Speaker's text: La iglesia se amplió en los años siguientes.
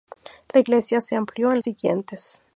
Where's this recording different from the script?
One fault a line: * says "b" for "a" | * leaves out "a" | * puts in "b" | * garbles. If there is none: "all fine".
* leaves out "los años"